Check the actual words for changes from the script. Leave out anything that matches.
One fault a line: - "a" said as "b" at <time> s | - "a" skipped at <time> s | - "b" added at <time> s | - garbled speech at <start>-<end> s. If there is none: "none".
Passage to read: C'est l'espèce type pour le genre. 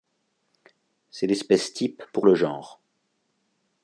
none